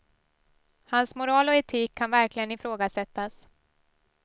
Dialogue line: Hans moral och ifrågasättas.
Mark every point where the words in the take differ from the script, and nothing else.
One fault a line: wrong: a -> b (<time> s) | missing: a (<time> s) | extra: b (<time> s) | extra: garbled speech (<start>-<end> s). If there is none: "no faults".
extra: etik kan verkligen (1.6 s)